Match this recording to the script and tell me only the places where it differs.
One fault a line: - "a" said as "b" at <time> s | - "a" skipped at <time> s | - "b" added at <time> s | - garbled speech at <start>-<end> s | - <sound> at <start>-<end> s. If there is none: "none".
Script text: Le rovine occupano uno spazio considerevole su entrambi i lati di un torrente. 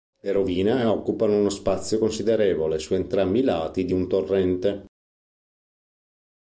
none